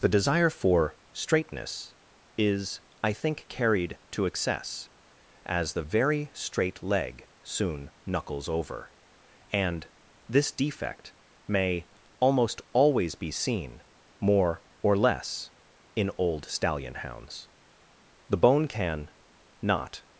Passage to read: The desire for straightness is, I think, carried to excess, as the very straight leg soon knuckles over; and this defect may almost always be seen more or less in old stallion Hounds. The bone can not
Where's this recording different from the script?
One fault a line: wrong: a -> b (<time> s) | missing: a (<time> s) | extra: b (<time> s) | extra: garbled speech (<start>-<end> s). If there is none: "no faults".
no faults